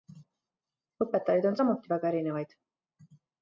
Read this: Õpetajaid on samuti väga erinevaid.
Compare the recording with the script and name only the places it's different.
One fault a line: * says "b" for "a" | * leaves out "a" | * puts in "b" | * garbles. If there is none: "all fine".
all fine